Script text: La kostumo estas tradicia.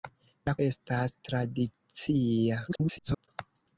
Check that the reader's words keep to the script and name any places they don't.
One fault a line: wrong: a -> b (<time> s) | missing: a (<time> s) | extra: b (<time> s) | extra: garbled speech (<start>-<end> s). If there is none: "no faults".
missing: kostumo (0.5 s)
extra: garbled speech (2.7-3.3 s)